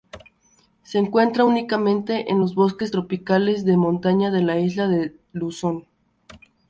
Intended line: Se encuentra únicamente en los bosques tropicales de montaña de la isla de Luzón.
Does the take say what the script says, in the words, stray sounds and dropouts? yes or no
yes